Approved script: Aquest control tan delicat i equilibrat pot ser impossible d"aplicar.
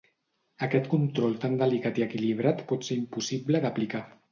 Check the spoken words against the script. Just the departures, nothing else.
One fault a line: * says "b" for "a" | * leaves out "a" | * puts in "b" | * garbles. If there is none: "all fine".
all fine